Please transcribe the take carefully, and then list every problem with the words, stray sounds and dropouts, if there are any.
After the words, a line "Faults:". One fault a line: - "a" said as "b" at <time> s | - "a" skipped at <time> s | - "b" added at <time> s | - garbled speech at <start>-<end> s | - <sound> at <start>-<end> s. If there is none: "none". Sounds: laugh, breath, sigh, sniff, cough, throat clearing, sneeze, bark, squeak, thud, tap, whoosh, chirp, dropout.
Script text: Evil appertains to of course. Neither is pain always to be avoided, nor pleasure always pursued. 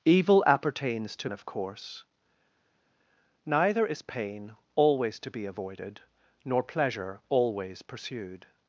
Evil appertains to of course. Neither is pain always to be avoided, nor pleasure always pursued.
Faults:
none